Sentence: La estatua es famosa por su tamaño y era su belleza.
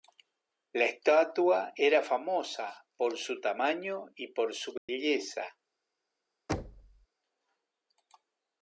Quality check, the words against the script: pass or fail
fail